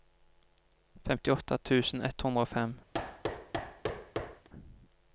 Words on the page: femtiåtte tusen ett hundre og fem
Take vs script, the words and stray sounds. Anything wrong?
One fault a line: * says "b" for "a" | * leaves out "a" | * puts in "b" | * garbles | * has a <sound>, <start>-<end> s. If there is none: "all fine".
* has a thud, 2.9-4.5 s